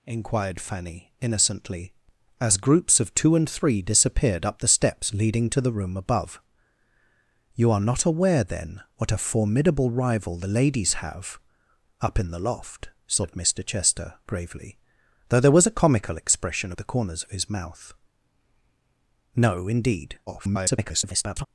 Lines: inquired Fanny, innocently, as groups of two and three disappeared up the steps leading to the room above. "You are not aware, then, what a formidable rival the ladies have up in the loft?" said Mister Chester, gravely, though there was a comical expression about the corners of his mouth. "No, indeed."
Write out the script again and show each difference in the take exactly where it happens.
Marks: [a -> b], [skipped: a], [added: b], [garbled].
inquired Fanny, innocently, as groups of two and three disappeared up the steps leading to the room above. "You are not aware, then, what a formidable rival the ladies have up in the loft?" said Mister Chester, gravely, though there was a comical expression [skipped: about] the corners of his mouth. "No, indeed." [garbled]